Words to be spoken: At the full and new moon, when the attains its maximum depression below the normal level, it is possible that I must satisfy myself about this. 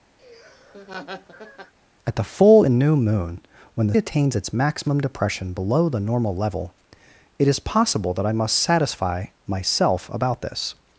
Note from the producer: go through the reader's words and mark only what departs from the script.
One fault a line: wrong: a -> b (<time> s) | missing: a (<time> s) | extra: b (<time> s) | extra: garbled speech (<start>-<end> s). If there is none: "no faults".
no faults